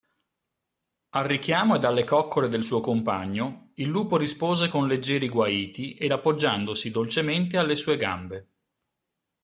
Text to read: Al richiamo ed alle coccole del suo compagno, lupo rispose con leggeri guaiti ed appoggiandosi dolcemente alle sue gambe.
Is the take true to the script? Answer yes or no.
no